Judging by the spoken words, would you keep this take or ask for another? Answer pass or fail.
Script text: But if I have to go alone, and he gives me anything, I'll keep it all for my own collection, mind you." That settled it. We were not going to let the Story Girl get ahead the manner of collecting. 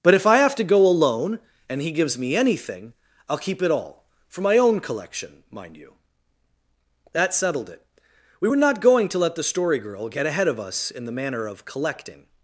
fail